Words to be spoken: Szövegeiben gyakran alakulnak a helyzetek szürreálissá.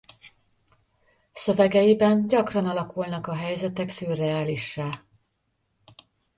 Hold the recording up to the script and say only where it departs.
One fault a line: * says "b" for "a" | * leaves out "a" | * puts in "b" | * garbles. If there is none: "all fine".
all fine